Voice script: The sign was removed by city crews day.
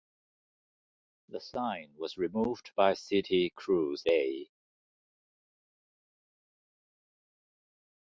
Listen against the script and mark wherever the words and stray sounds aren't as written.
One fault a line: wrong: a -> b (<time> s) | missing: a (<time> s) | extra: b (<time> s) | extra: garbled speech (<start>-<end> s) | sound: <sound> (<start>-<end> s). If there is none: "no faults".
no faults